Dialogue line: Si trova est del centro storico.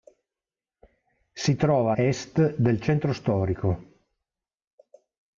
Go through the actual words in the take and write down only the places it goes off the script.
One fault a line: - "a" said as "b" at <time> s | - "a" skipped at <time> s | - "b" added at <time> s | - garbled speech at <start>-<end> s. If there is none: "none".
none